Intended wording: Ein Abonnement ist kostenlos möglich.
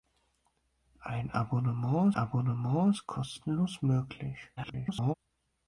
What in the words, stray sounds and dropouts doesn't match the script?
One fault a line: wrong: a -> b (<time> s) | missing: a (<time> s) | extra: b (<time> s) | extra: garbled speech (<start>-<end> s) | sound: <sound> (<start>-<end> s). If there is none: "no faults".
extra: Abonnement (2.1 s)
extra: garbled speech (4.6-5.1 s)